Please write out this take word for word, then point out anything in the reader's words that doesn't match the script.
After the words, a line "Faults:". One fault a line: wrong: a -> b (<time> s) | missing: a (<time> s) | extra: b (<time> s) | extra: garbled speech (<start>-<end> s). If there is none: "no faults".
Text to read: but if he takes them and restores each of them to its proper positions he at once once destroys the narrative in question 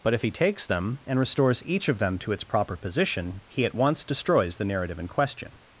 but if he takes them and restores each of them to its proper position he at once destroys the narrative in question
Faults:
wrong: positions -> position (2.8 s)
missing: once (4.0 s)